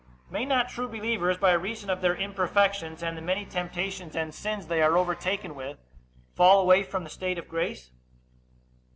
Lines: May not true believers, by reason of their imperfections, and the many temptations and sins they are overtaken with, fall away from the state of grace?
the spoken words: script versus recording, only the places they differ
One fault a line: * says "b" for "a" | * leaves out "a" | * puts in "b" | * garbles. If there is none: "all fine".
all fine